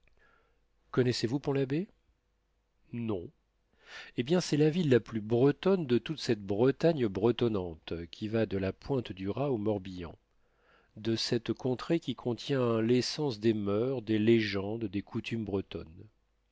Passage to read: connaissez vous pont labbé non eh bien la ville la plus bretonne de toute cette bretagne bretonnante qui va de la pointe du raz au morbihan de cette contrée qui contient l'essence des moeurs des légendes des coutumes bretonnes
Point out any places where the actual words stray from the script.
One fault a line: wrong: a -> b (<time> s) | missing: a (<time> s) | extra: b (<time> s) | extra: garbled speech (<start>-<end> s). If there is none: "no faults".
extra: c'est (4.4 s)